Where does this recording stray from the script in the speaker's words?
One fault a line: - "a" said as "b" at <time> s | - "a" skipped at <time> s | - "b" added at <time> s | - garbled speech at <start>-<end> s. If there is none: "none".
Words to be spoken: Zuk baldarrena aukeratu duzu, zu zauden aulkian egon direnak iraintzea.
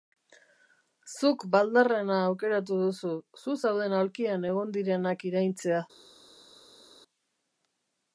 none